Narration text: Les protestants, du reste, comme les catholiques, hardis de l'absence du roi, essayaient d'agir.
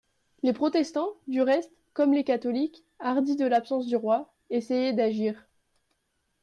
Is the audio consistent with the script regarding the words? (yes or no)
yes